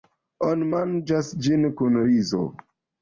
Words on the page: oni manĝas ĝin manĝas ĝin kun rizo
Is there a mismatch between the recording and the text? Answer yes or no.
yes